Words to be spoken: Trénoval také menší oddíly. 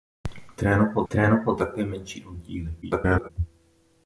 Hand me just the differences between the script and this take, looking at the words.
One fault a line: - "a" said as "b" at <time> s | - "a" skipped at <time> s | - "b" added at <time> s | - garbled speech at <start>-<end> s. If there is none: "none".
- "trénoval" added at 1.1 s
- garbled speech at 2.8-3.3 s